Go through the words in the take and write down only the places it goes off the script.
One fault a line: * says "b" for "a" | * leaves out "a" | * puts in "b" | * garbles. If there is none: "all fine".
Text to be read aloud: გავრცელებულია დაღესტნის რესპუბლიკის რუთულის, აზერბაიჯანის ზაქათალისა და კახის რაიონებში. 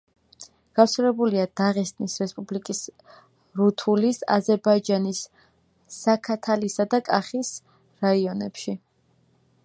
all fine